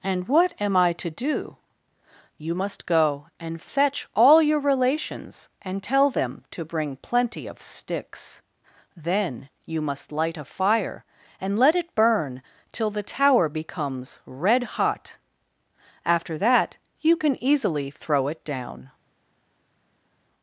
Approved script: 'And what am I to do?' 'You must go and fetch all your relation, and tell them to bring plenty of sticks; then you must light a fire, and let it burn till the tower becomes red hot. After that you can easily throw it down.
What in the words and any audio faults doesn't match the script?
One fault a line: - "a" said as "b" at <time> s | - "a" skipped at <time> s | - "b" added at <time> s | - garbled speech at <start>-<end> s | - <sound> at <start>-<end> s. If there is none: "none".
- "relation" said as "relations" at 4.6 s